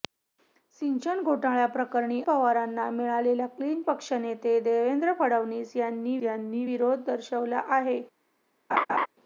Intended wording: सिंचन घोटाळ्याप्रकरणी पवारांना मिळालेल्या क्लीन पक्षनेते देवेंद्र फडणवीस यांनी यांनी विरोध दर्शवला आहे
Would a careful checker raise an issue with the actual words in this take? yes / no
no